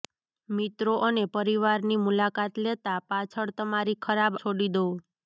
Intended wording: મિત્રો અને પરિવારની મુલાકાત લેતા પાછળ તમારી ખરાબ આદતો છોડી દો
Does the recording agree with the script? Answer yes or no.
no